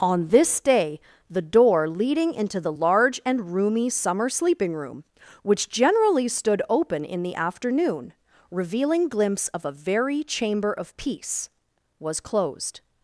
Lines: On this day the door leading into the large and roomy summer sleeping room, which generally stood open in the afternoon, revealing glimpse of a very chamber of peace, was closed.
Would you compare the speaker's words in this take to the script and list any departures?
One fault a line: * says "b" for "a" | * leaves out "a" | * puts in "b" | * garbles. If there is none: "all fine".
all fine